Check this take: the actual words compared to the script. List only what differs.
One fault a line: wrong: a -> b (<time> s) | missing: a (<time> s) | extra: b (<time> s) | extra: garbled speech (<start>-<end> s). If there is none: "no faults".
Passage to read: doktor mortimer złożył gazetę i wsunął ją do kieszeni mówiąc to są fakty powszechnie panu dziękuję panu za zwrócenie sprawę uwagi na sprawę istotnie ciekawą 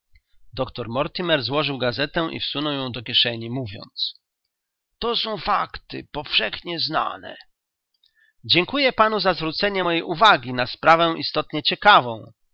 wrong: panu -> znane (6.8 s)
wrong: sprawę -> mojej (9.8 s)